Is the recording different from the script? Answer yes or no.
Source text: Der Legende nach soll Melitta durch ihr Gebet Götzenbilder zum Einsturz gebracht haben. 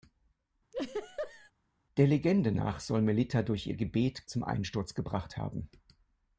yes